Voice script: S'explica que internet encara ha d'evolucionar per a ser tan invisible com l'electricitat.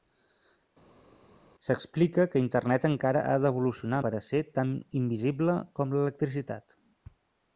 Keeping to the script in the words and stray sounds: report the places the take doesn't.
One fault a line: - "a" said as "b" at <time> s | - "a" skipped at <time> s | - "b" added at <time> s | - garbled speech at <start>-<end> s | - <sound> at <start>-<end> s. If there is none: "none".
none